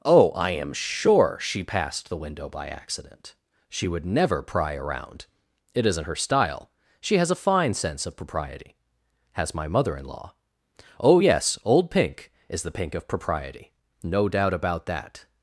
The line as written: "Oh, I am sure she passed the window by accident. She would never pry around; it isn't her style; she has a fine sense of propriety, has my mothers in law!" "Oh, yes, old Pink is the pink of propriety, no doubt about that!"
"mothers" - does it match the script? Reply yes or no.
no